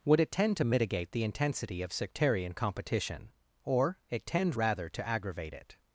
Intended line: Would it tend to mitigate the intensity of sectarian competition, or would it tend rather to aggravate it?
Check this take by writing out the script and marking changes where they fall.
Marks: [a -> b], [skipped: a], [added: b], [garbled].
Would it tend to mitigate the intensity of sectarian competition, or [skipped: would] it tend rather to aggravate it?